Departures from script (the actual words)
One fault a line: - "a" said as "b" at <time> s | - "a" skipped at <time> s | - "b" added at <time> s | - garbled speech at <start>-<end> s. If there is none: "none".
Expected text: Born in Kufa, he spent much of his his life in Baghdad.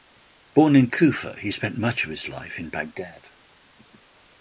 - "his" skipped at 2.3 s